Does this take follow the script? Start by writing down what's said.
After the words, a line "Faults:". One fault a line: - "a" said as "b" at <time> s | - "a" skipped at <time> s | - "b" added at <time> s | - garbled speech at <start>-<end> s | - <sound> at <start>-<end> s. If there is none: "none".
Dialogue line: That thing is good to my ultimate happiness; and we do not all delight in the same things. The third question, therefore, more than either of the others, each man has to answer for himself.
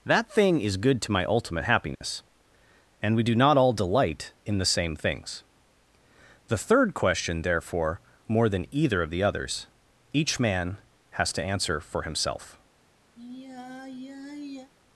That thing is good to my ultimate happiness; and we do not all delight in the same things. The third question, therefore, more than either of the others, each man has to answer for himself.
Faults:
- dropout at 2.0-2.0 s
- sigh at 13.2-14.7 s